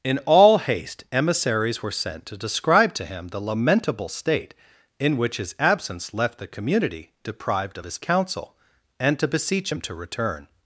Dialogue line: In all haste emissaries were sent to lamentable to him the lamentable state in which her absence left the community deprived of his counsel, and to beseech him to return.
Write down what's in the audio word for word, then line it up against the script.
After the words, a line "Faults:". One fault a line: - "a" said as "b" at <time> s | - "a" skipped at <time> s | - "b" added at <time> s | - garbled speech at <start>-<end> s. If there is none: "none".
In all haste emissaries were sent to describe to him the lamentable state in which his absence left the community deprived of his counsel, and to beseech him to return.
Faults:
- "lamentable" said as "describe" at 2.4 s
- "her" said as "his" at 5.4 s